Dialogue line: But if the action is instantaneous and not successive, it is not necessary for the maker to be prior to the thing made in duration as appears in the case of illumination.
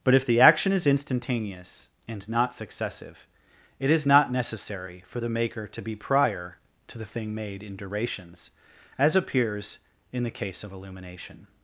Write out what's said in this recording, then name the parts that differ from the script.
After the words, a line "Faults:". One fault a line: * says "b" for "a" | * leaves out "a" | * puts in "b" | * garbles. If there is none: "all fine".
But if the action is instantaneous and not successive, it is not necessary for the maker to be prior to the thing made in durations as appears in the case of illumination.
Faults:
* says "durations" for "duration"